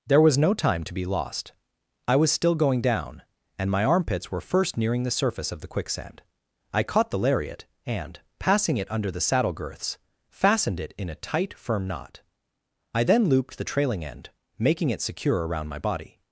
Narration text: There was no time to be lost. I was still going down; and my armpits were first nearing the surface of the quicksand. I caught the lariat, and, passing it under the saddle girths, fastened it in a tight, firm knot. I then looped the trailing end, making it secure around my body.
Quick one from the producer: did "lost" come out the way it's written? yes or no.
yes